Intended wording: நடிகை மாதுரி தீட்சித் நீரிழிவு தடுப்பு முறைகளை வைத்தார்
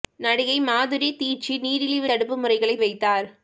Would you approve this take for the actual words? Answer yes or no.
yes